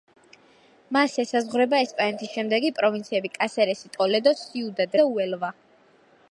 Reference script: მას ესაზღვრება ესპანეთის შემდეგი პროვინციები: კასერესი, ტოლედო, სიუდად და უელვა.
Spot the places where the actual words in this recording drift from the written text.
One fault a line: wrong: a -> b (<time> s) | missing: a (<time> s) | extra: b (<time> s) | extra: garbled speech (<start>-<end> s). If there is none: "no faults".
no faults